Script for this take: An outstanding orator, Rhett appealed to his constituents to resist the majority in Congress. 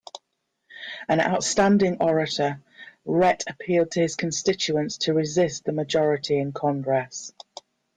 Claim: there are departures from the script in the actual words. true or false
false